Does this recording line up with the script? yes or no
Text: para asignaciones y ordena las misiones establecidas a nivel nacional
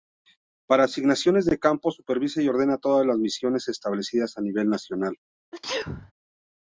no